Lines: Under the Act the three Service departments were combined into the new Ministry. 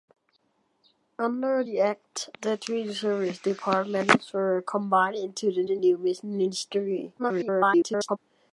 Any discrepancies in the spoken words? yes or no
yes